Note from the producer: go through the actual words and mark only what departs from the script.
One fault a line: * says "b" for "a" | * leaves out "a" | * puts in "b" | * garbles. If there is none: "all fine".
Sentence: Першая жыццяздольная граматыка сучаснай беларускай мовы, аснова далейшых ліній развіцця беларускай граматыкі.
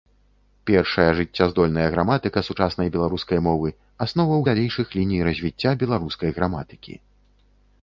all fine